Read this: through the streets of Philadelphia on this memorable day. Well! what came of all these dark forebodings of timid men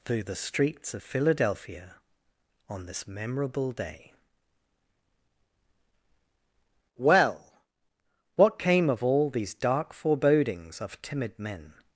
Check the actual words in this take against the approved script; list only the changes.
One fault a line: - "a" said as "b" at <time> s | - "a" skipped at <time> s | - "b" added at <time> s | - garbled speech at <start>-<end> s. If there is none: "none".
none